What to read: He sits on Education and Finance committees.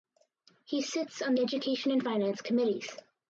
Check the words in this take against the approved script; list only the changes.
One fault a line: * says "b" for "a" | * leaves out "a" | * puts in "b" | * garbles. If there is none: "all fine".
all fine